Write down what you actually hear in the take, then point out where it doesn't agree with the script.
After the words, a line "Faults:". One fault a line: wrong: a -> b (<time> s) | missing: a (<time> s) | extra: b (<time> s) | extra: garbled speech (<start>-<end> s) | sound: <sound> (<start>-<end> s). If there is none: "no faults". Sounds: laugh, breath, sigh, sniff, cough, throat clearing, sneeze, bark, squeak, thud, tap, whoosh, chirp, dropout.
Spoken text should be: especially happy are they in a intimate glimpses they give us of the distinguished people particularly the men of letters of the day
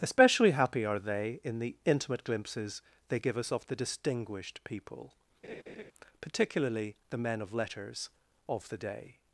especially happy are they in the intimate glimpses they give us of the distinguished people particularly the men of letters of the day
Faults:
wrong: a -> the (1.6 s)
sound: laugh (5.4-5.9 s)